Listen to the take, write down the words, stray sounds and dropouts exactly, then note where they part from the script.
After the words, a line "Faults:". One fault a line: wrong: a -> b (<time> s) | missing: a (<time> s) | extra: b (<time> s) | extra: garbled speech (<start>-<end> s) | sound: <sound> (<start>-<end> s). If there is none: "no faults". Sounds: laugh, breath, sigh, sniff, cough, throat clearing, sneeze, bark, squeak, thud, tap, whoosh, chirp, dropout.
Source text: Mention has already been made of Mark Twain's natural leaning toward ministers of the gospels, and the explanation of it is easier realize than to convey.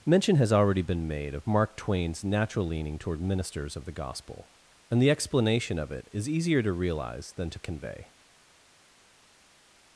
Mention has already been made of Mark Twain's natural leaning toward ministers of the gospel, and the explanation of it is easier to realize than to convey.
Faults:
wrong: gospels -> gospel (3.9 s)
extra: to (6.6 s)